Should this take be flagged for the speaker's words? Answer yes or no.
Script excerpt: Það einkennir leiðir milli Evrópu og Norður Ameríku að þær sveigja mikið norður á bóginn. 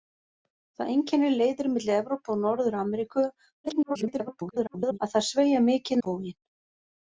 yes